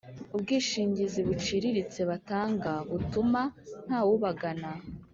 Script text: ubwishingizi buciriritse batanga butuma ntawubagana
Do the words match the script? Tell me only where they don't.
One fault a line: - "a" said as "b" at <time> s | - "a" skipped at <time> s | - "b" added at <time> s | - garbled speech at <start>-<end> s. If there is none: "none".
none